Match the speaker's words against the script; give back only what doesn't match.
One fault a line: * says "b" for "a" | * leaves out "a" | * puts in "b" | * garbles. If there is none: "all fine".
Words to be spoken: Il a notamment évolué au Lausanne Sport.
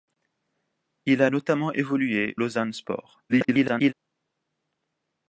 * leaves out "au"
* garbles